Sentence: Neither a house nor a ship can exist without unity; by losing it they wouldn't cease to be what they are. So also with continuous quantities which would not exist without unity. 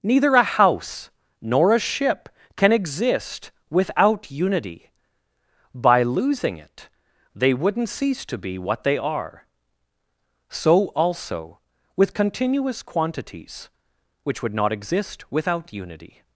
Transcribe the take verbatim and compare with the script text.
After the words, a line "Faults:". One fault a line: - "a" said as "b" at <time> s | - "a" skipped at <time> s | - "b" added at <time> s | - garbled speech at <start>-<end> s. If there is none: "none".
Neither a house nor a ship can exist without unity; by losing it they wouldn't cease to be what they are. So also with continuous quantities which would not exist without unity.
Faults:
none